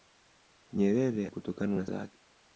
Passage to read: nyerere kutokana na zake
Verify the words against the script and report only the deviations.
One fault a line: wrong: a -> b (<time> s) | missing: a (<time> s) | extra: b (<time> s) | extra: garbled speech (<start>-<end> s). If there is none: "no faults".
no faults